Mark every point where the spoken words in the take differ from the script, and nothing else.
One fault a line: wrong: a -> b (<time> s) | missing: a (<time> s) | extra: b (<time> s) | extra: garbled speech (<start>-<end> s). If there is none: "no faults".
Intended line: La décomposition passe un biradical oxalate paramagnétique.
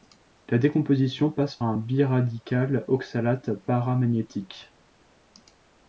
no faults